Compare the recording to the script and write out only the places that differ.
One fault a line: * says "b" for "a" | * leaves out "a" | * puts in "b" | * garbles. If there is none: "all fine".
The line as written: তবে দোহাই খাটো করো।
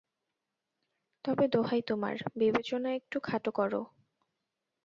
* puts in "তোমার বিবেচনা একটু"